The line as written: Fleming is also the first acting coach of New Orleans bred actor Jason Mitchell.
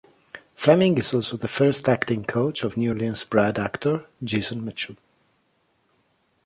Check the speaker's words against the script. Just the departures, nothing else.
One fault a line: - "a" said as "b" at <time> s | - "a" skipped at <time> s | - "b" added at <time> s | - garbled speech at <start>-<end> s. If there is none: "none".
none